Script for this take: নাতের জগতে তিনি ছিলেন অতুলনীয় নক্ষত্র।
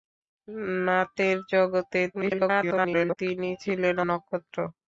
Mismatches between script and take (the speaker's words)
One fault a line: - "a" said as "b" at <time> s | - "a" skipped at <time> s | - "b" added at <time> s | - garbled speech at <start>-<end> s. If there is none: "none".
- garbled speech at 2.1-3.2 s
- "অতুলনীয়" skipped at 4.0 s